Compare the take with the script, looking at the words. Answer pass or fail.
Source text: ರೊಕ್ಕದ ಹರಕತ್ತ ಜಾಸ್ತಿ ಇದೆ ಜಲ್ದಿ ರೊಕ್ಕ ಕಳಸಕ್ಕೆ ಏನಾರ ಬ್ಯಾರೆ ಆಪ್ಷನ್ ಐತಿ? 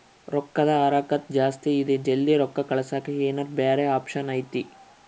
pass